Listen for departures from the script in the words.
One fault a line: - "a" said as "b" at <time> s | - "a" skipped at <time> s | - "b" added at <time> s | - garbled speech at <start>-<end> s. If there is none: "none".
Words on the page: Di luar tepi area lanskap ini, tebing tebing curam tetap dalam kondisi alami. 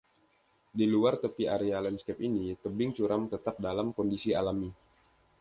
- "tebing" skipped at 3.0 s